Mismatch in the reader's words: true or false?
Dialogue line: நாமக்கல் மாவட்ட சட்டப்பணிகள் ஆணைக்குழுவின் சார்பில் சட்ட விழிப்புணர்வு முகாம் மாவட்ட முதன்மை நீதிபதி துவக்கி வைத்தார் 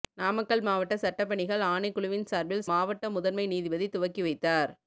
true